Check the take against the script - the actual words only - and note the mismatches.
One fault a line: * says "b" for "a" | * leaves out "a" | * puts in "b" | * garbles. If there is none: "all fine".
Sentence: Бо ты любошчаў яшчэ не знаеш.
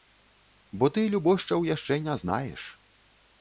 all fine